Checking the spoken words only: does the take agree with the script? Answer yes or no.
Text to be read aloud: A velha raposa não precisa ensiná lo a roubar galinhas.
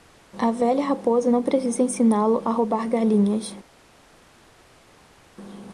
yes